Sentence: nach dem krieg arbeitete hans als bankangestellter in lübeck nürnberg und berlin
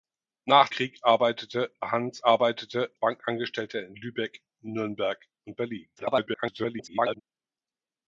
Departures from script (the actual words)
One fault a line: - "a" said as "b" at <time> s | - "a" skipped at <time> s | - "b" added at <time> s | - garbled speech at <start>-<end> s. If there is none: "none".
- "dem" skipped at 0.7 s
- "als" said as "arbeitete" at 2.2 s
- garbled speech at 6.0-7.2 s